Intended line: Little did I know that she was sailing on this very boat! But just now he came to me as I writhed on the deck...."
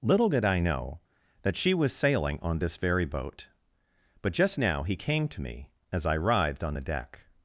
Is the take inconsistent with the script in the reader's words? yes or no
no